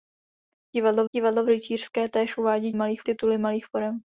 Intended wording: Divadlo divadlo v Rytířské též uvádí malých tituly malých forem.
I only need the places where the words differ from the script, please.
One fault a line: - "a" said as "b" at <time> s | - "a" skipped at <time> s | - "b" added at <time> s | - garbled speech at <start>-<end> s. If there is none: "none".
none